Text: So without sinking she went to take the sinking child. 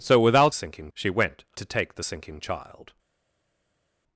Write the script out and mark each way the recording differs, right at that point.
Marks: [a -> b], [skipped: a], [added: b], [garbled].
So without sinking she went to take the sinking child.